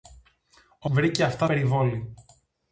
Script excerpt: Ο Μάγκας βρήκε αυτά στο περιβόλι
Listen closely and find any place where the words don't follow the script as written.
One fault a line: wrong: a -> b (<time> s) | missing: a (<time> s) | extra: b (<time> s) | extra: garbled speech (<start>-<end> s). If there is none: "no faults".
missing: Μάγκας (0.9 s)
missing: στο (1.5 s)